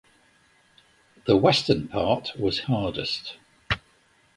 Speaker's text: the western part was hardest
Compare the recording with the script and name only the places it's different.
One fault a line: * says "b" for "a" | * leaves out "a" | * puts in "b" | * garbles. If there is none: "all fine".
all fine